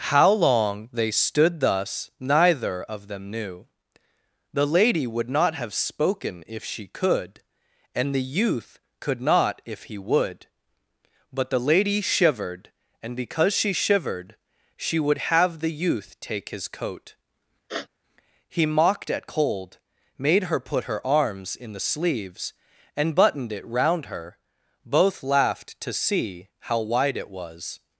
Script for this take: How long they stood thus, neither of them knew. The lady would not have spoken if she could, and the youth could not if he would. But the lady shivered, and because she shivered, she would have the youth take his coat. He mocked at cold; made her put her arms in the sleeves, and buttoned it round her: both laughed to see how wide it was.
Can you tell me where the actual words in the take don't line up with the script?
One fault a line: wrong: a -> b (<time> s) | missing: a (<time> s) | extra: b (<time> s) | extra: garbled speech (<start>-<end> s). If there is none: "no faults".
no faults